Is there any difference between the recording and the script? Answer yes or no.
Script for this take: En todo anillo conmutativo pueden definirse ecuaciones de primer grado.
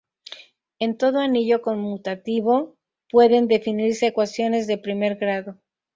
no